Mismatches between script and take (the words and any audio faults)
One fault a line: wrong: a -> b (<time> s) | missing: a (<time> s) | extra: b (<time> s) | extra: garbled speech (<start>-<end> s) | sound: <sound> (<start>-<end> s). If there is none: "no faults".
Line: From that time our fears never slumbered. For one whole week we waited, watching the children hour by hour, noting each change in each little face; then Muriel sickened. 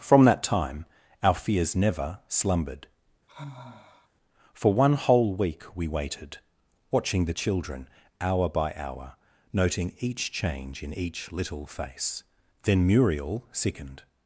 sound: sigh (3.3-4.1 s)